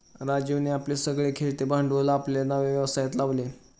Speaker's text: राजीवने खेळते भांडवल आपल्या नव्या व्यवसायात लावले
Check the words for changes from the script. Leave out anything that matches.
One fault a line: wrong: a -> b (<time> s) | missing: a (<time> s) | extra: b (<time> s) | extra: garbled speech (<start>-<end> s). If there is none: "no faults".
extra: आपले सगळे (0.7 s)